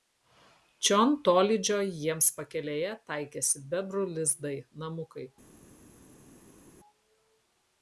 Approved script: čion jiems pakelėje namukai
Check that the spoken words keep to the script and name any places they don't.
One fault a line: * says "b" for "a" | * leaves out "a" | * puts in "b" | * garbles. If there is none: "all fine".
* puts in "tolydžio"
* puts in "taikėsi bebrų lizdai"